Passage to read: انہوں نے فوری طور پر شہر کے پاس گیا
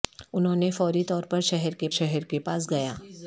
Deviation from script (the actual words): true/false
true